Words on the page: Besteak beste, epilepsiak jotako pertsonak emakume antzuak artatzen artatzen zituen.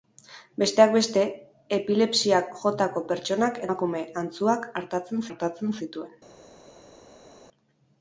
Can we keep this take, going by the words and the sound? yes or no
yes